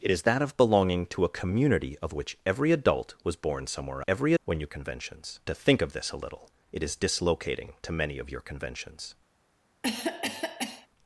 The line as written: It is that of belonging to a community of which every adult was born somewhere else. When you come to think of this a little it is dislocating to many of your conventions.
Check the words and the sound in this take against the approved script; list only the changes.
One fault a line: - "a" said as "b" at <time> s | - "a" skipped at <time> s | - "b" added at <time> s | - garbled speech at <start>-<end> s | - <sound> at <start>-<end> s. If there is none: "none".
- "else" said as "every" at 4.1 s
- "come" said as "conventions" at 4.7 s
- cough at 9.8-10.9 s